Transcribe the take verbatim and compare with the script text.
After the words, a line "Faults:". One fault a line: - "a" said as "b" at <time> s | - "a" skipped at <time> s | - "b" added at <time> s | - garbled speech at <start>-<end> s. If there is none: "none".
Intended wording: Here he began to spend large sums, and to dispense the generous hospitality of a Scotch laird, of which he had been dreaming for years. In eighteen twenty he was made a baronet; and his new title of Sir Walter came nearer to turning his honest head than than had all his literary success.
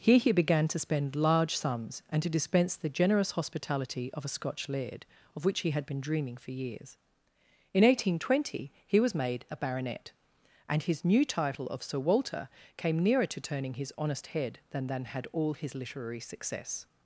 Here he began to spend large sums, and to dispense the generous hospitality of a Scotch laird, of which he had been dreaming for years. In eighteen twenty he was made a baronet; and his new title of Sir Walter came nearer to turning his honest head than than had all his literary success.
Faults:
none